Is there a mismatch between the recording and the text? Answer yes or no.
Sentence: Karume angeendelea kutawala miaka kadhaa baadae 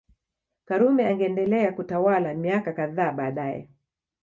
no